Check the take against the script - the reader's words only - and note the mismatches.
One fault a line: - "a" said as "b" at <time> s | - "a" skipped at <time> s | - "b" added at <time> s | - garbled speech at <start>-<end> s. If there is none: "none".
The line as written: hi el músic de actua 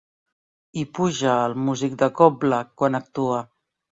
- "puja" added at 1.0 s
- "cobla quan" added at 2.2 s